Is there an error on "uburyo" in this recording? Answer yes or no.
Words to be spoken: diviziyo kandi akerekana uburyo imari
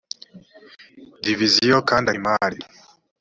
yes